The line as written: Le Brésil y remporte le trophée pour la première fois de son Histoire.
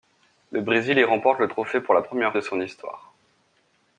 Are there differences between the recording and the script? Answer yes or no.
yes